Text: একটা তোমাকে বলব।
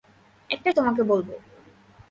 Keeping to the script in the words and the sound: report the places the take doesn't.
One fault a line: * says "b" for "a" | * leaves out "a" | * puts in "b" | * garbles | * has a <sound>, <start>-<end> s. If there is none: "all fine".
all fine